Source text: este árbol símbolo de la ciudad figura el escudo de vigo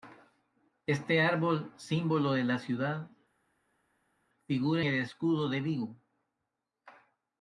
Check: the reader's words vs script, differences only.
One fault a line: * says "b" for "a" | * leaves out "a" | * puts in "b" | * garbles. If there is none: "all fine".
all fine